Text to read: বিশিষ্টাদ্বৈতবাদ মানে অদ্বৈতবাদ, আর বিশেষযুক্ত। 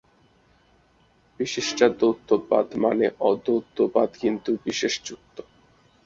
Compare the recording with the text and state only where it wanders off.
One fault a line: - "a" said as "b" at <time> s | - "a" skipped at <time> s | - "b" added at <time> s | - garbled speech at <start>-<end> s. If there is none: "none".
- "আর" said as "কিন্তু" at 4.2 s